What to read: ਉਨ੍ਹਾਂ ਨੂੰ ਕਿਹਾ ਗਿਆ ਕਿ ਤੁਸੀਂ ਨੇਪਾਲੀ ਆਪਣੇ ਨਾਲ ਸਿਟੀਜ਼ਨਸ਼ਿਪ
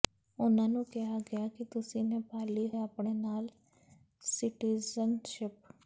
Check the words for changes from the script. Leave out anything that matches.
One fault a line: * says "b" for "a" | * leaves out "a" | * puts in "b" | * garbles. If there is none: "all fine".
all fine